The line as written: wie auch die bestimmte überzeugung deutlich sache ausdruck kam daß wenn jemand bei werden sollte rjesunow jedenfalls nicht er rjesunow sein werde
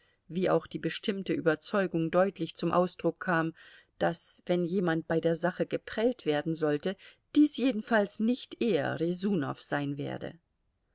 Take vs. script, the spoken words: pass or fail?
fail